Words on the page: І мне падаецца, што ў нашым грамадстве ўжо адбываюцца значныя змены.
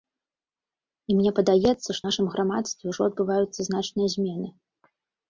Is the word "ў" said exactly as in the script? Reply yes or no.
no